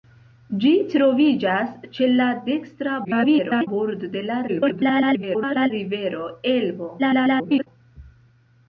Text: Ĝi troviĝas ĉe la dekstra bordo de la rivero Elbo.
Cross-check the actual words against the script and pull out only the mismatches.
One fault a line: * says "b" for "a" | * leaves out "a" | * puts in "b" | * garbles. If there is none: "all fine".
* garbles
* garbles
* garbles